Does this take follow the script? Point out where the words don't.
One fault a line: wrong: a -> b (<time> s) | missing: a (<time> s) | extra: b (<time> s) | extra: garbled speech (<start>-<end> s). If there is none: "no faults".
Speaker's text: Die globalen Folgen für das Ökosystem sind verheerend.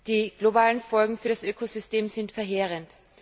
no faults